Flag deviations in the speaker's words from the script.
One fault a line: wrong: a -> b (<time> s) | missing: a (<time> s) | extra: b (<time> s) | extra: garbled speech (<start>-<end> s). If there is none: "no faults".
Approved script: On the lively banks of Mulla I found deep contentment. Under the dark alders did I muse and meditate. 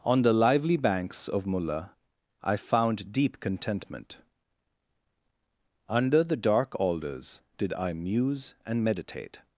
no faults